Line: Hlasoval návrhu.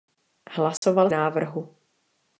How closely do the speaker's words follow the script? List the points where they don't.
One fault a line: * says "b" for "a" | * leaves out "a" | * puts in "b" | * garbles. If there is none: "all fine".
all fine